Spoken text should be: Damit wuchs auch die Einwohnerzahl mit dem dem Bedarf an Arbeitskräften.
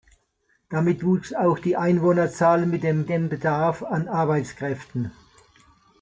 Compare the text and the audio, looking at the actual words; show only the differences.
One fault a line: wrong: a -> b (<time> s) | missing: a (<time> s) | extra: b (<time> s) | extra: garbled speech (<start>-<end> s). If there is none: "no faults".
no faults